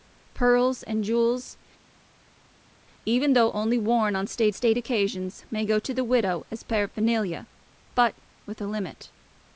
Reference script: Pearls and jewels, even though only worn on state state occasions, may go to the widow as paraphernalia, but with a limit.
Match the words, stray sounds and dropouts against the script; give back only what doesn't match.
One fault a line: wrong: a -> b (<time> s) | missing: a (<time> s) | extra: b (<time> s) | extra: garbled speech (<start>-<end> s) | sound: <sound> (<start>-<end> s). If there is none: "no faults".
no faults